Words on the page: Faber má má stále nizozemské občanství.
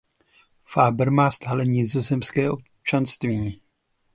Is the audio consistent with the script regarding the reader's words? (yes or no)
no